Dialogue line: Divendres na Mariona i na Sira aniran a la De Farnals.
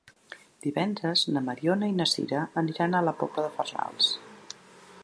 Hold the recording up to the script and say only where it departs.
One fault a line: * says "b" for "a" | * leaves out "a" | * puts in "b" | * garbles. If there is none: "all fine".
* puts in "Pobla"